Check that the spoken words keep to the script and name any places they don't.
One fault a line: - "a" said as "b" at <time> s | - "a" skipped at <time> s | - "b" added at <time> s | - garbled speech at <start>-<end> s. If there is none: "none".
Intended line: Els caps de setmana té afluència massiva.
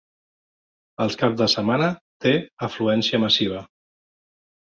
none